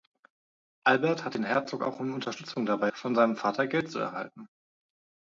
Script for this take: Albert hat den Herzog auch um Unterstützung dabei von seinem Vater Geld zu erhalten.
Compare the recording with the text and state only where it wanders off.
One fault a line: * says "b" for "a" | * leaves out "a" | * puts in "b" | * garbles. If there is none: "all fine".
all fine